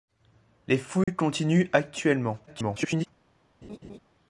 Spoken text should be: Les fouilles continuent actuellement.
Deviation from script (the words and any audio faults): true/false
true